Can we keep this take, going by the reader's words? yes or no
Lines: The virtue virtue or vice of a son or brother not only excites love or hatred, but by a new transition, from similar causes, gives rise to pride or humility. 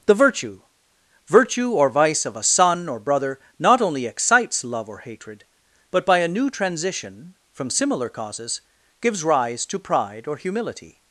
yes